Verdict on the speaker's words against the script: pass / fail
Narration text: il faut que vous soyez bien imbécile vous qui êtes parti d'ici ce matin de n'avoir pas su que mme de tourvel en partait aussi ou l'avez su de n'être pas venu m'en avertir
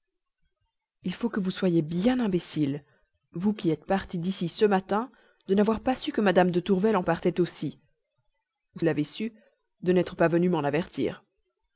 pass